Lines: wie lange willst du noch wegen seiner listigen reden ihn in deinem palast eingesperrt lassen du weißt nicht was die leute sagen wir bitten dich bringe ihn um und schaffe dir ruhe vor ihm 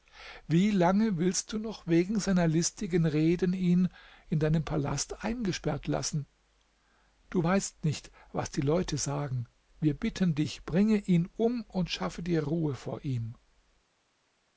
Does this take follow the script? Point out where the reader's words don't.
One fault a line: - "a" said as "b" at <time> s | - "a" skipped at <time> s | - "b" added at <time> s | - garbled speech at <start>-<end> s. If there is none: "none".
none